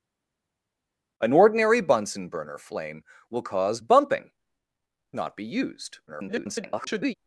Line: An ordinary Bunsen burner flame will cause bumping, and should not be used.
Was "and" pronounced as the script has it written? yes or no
no